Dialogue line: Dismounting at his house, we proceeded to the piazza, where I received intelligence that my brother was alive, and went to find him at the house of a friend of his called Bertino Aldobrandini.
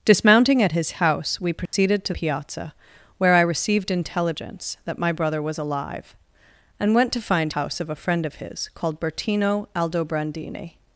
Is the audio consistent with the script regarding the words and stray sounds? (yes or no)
no